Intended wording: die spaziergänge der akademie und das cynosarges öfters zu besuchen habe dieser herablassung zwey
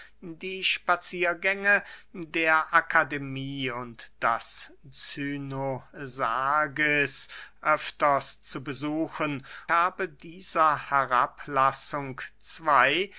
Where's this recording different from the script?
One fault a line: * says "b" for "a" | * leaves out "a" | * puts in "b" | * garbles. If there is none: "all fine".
all fine